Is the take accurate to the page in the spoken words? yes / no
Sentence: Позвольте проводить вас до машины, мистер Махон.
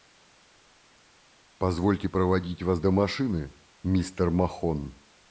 yes